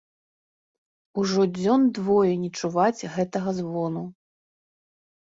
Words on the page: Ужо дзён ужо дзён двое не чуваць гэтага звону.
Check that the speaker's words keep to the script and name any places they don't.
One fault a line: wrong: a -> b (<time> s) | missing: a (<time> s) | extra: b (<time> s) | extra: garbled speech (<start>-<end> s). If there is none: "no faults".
missing: ужо дзён (1.8 s)